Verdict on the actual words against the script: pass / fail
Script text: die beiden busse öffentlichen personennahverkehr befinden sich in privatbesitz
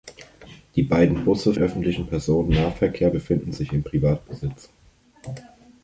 pass